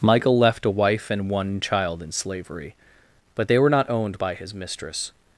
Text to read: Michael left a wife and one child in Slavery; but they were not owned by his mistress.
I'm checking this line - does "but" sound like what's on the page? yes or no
yes